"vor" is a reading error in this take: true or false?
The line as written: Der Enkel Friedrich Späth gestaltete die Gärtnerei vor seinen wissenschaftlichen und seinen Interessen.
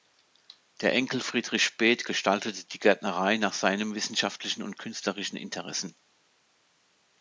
true